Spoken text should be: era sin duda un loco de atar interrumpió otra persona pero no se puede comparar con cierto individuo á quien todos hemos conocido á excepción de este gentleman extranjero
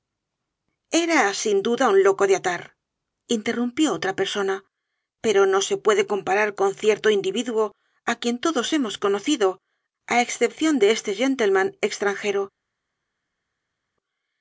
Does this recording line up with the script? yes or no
yes